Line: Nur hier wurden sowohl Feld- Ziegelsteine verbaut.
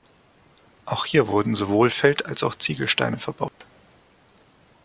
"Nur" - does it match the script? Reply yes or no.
no